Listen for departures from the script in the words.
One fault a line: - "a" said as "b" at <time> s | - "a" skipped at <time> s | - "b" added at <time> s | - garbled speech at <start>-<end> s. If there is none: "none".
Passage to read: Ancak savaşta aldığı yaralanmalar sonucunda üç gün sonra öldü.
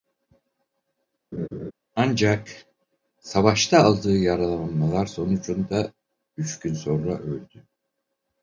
none